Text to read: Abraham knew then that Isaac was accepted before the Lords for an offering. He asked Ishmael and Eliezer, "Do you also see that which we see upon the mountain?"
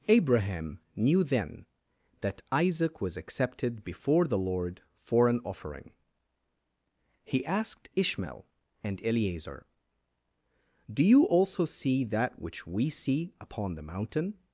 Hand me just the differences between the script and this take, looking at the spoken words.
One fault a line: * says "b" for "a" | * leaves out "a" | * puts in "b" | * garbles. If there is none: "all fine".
* says "Lord" for "Lords"